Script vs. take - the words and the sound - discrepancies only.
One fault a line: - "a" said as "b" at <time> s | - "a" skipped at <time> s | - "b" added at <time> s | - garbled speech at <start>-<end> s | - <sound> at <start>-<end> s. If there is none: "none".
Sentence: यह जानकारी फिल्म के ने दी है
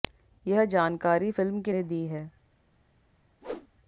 - whoosh at 3.4-3.7 s